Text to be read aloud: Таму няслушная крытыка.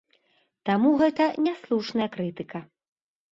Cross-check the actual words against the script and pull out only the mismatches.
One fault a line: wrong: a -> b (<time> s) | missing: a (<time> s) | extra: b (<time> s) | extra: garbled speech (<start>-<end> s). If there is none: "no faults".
extra: гэта (1.0 s)